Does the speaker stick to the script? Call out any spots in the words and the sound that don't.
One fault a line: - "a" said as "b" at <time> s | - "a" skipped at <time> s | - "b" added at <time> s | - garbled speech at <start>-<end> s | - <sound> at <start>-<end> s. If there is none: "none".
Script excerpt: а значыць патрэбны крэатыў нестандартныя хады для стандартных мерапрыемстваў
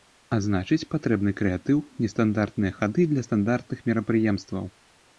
none